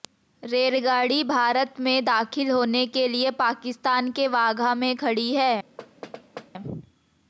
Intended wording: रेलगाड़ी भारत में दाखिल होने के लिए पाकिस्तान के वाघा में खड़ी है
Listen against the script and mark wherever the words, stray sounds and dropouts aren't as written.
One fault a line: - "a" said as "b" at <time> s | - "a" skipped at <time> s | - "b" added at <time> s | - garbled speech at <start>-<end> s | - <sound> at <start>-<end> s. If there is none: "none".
- thud at 5.8-6.5 s